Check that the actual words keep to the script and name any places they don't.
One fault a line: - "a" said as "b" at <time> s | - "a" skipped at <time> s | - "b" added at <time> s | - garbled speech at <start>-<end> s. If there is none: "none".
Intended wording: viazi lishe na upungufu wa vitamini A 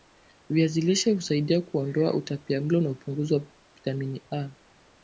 - "husaidia kuondoa utapiamlo" added at 1.1 s